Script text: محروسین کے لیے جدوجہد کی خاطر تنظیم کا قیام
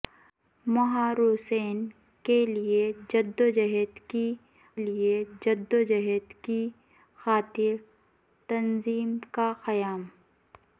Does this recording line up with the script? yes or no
no